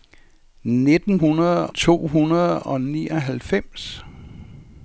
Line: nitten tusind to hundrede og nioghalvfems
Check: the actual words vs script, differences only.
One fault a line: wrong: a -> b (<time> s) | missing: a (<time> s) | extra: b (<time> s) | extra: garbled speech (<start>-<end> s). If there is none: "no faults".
wrong: tusind -> hundrede (1.1 s)